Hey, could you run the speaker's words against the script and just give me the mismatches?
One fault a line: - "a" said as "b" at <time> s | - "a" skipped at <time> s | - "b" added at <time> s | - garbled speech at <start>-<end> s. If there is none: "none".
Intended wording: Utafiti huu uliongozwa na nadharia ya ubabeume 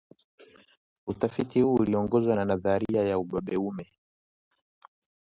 none